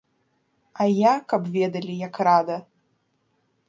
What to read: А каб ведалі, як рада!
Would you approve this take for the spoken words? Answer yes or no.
no